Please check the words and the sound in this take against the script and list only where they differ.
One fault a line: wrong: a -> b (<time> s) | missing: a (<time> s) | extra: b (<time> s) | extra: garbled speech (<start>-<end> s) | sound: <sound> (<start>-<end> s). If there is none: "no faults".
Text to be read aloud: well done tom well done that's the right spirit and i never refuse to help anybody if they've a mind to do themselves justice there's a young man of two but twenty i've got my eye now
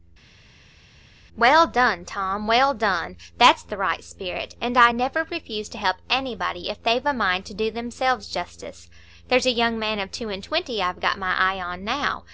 wrong: but -> and (10.3 s)
extra: on (11.6 s)